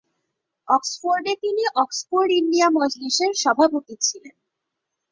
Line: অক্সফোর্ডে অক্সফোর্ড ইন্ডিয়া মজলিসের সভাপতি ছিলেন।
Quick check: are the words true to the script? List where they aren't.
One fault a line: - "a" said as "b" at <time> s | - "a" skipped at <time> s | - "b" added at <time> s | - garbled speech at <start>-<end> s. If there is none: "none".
- "তিনি" added at 1.4 s